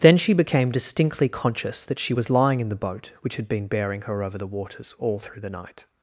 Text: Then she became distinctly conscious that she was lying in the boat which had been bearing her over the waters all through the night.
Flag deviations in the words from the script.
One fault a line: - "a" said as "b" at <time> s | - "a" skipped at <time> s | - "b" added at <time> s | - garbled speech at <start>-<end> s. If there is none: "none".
none